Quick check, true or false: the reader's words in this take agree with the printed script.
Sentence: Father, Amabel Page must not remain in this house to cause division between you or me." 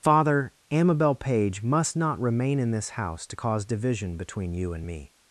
false